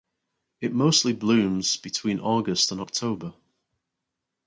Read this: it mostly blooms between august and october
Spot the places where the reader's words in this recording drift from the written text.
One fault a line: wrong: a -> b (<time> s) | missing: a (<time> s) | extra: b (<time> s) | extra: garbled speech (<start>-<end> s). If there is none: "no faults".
no faults